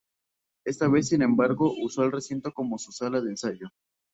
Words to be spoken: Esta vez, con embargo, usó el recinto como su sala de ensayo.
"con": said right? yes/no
no